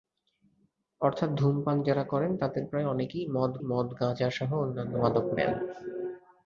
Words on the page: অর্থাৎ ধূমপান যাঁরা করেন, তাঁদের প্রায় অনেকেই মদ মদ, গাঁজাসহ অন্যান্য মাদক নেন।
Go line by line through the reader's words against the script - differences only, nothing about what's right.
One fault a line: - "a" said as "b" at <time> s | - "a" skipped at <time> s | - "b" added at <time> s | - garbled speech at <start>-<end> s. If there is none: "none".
none